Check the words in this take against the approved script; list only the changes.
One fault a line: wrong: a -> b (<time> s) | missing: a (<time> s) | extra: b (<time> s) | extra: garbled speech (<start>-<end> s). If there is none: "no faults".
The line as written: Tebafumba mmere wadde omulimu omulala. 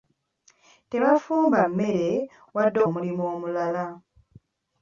no faults